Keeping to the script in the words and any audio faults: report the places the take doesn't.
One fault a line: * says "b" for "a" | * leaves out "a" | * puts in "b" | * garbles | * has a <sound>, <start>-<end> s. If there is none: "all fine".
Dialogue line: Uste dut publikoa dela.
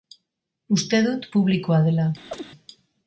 * has a chirp, 2.3-2.5 s